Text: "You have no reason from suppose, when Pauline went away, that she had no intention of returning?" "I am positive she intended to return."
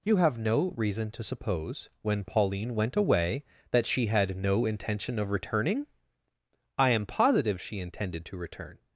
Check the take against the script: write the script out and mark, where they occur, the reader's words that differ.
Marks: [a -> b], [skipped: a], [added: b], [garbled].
"You have no reason [from -> to] suppose, when Pauline went away, that she had no intention of returning?" "I am positive she intended to return."